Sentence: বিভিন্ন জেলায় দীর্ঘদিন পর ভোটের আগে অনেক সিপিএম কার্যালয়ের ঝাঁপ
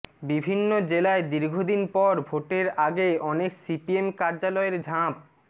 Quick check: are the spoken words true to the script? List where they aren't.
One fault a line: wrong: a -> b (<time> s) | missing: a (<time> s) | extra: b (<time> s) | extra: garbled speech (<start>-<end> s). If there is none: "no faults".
no faults